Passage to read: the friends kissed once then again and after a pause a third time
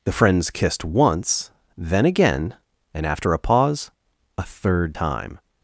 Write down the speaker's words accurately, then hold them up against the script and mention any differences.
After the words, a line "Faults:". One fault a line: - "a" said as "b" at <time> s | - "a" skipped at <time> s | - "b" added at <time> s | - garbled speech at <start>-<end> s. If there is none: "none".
the friends kissed once then again and after a pause a third time
Faults:
none